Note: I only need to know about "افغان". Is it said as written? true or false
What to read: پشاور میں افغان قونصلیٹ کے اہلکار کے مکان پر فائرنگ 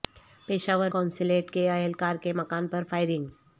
false